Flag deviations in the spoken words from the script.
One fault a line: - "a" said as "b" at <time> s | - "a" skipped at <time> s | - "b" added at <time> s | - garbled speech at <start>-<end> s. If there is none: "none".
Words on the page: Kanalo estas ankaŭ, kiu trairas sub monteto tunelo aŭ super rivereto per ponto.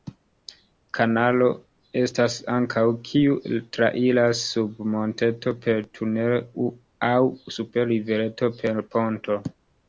- "per" added at 5.7 s